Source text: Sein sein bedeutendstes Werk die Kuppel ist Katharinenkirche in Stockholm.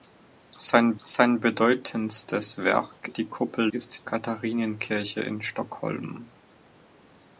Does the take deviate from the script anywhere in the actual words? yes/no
no